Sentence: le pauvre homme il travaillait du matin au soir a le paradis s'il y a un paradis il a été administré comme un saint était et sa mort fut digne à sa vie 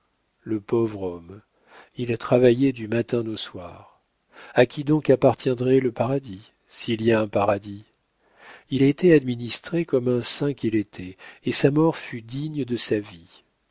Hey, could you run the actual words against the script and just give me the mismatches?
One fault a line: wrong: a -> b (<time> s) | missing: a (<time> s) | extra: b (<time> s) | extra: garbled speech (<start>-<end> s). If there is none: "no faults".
extra: qui donc appartiendrait (4.6 s)
extra: qu'il (10.5 s)
wrong: à -> de (12.6 s)